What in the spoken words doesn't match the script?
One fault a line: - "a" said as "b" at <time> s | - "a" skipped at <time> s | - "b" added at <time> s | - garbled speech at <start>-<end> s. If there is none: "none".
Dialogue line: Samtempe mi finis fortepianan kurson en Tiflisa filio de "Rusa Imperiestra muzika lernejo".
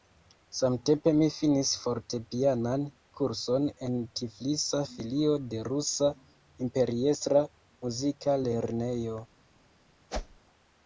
none